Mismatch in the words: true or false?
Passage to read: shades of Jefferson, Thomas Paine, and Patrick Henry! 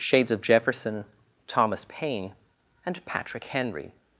false